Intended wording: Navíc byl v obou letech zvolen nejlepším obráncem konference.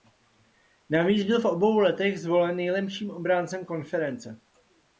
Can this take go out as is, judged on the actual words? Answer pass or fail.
pass